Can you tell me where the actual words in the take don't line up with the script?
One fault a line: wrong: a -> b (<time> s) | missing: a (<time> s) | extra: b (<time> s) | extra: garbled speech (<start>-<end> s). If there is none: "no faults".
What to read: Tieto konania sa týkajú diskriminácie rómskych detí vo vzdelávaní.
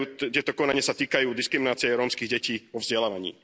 no faults